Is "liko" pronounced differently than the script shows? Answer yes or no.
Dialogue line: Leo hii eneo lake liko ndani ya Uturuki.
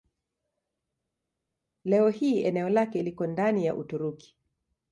no